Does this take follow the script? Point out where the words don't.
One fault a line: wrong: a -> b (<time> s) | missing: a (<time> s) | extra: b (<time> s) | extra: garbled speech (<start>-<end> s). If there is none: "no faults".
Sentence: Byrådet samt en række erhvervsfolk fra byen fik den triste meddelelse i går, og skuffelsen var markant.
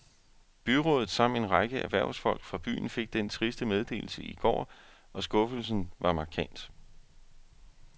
no faults